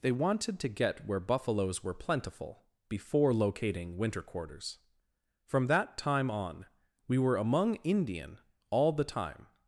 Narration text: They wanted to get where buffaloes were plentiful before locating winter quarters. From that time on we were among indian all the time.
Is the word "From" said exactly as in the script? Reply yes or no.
yes